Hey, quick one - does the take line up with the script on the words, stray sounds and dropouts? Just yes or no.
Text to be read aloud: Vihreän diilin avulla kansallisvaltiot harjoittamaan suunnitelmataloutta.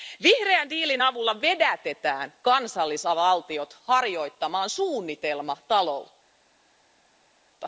no